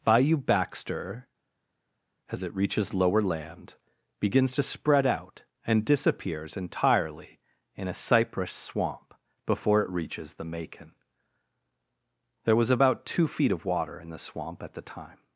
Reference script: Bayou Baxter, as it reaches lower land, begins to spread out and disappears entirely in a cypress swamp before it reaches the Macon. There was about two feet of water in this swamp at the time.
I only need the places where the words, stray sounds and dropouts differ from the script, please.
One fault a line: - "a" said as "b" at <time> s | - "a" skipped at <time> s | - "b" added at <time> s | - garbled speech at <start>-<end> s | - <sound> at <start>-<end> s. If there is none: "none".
- "this" said as "the" at 14.1 s